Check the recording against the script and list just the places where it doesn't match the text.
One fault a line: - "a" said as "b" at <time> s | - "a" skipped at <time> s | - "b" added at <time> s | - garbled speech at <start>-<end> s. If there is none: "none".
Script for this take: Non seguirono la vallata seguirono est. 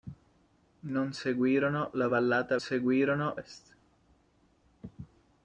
none